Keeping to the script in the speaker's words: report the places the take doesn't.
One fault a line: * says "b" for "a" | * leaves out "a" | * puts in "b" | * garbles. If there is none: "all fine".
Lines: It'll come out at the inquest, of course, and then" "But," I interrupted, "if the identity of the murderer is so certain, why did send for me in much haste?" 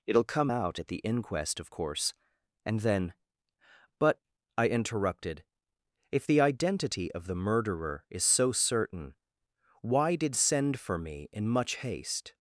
all fine